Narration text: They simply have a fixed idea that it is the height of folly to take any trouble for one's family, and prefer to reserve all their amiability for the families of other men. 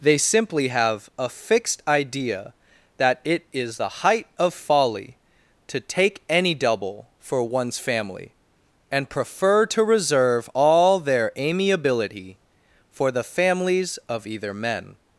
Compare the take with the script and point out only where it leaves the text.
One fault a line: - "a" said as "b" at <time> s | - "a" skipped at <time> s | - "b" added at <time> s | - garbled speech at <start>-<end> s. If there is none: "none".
- "trouble" said as "double" at 6.5 s
- "other" said as "either" at 14.3 s